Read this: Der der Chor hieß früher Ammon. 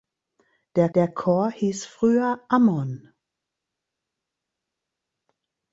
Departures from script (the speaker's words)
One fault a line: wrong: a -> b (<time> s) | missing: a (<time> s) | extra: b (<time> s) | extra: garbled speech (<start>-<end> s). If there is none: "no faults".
no faults